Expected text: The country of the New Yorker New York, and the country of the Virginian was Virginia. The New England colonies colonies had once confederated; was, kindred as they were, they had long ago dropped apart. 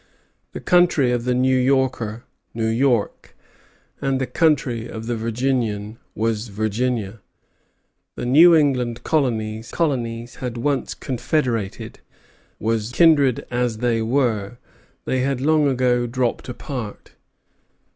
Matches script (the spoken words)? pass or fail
pass